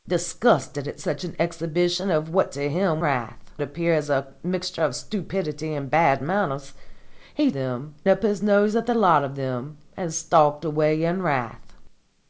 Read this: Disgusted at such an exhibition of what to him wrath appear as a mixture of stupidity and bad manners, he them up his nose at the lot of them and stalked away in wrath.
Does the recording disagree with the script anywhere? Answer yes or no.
no